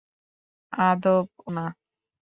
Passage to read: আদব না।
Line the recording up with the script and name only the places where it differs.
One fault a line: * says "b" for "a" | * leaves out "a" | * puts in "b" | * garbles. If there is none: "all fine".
all fine